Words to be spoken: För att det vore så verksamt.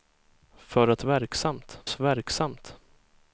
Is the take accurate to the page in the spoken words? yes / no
no